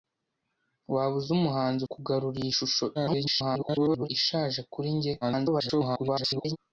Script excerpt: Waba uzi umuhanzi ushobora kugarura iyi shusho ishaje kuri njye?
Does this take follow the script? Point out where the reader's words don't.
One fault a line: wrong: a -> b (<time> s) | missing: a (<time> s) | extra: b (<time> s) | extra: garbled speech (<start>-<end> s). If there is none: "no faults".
missing: ushobora (1.8 s)
extra: garbled speech (2.9-4.1 s)
extra: garbled speech (5.2-6.6 s)